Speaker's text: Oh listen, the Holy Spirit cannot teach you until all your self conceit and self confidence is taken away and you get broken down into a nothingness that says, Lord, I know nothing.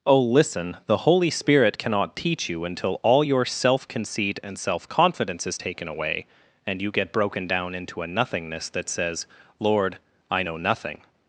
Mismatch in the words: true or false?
false